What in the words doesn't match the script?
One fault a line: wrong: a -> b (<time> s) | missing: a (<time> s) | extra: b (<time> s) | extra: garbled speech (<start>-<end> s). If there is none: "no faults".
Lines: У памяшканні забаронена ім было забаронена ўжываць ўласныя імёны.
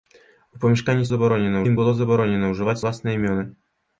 no faults